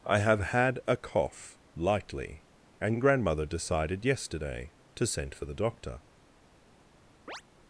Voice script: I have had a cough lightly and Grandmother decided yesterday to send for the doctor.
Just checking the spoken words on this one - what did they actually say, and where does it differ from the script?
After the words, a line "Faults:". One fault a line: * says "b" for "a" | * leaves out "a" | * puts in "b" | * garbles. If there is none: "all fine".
I have had a cough lightly and Grandmother decided yesterday to send for the doctor.
Faults:
all fine